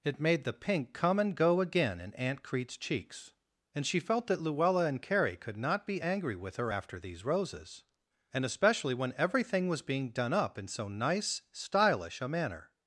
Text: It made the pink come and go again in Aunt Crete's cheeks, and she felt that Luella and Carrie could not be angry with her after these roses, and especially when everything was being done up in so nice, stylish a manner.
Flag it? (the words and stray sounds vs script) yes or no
no